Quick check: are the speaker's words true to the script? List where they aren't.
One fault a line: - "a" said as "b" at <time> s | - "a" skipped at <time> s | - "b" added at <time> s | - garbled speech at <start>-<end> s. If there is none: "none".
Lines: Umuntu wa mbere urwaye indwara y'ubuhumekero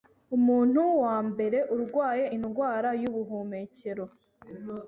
none